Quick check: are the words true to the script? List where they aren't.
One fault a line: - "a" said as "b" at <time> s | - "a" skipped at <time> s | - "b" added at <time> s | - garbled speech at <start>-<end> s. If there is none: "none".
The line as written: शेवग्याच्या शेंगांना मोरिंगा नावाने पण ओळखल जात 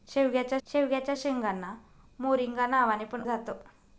- "शेवग्याच्या" added at 0.7 s
- "ओळखल" skipped at 3.2 s